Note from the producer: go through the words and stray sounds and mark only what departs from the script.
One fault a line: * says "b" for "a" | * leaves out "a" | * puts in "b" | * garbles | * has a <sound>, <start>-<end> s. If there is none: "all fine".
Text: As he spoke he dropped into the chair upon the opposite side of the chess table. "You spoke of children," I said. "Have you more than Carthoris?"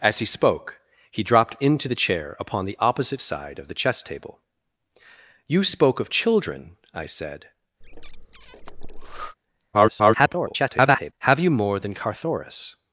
* has a breath, 7.8-9.4 s
* garbles